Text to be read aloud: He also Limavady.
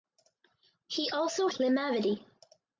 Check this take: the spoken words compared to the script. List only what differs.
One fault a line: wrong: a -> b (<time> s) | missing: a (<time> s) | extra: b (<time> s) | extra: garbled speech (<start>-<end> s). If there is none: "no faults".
no faults